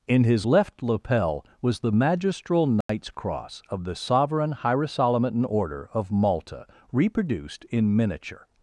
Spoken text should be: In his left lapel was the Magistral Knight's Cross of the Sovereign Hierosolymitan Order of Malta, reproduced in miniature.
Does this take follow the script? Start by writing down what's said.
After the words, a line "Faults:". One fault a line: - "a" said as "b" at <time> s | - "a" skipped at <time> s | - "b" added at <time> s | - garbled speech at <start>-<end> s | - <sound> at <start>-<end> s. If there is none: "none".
In his left lapel was the Magistral Knight's Cross of the Sovereign Hierosolymitan Order of Malta, reproduced in miniature.
Faults:
- dropout at 2.8-2.9 s